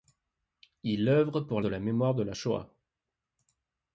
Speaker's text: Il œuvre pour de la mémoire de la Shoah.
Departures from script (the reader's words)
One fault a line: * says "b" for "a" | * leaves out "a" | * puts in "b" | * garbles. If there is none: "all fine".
all fine